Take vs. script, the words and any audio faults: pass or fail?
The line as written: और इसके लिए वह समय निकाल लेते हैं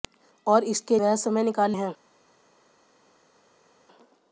fail